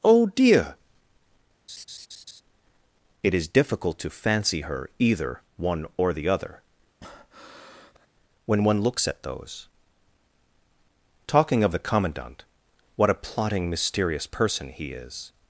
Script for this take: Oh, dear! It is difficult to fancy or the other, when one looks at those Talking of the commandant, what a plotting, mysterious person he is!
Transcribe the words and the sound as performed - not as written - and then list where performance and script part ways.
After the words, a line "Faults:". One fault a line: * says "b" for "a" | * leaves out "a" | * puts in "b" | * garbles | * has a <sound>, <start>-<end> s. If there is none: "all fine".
Oh, dear! It is difficult to fancy her either one or the other, when one looks at those Talking of the commandant, what a plotting, mysterious person he is!
Faults:
* has a laugh, 1.7-2.4 s
* puts in "her either one"
* has a breath, 7.0-8.1 s